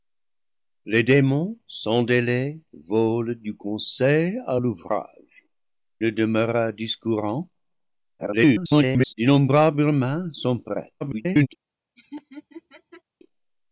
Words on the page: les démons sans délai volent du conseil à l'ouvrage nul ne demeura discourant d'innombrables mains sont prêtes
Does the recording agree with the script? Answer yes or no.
no